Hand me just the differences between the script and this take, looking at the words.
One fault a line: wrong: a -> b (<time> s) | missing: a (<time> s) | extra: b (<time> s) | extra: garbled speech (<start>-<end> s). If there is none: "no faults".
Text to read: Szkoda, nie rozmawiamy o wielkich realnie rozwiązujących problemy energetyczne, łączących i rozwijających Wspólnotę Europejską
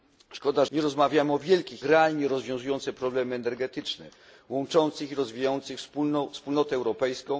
no faults